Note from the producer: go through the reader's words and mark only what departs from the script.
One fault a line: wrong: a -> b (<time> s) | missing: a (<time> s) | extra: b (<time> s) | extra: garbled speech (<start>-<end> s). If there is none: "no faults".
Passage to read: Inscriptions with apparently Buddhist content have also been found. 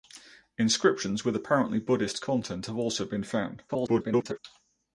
extra: garbled speech (3.7-4.4 s)